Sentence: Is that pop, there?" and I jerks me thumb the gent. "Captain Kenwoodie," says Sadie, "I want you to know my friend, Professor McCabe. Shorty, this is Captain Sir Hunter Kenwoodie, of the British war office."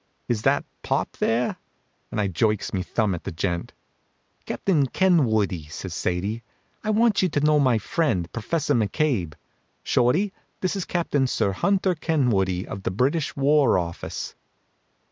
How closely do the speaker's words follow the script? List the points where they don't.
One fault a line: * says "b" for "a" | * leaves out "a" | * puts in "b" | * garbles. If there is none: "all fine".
* puts in "at"